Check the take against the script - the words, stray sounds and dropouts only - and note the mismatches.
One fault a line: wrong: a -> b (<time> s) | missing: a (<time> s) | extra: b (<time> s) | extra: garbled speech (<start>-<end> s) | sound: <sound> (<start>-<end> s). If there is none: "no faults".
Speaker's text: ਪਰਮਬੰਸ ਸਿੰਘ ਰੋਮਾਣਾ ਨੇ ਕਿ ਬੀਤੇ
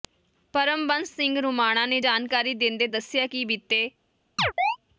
extra: ਜਾਣਕਾਰੀ ਦਿੰਦੇ ਦੱਸਿਆ (2.0 s)
sound: chirp (4.4-4.8 s)